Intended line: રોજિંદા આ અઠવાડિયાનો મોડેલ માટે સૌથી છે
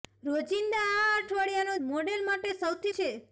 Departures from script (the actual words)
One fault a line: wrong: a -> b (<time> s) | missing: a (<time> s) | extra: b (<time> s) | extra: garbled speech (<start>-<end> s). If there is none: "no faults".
no faults